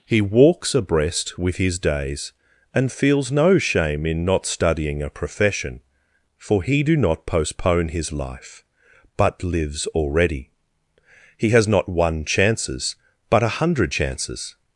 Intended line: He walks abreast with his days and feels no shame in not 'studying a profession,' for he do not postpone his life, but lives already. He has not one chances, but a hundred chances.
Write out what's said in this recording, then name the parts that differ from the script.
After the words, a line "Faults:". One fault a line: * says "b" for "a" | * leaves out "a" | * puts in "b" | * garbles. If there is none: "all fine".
He walks abreast with his days and feels no shame in not 'studying a profession,' for he do not postpone his life, but lives already. He has not one chances, but a hundred chances.
Faults:
all fine